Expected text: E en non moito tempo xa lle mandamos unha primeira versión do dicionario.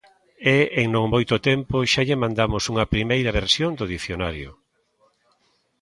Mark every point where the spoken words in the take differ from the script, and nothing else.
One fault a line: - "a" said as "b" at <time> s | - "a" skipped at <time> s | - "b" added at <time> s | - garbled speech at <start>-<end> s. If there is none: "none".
none